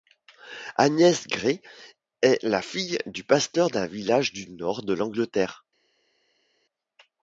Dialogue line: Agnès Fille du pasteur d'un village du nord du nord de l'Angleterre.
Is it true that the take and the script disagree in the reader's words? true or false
true